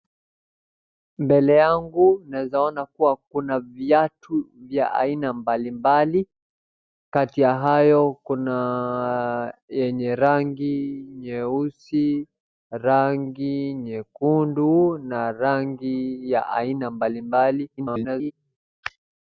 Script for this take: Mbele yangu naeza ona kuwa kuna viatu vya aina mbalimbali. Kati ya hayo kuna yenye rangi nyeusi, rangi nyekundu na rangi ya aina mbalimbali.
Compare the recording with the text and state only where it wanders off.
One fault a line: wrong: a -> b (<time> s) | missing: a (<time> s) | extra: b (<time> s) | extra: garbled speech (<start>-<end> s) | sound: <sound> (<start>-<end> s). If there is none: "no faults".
extra: garbled speech (17.8-18.3 s)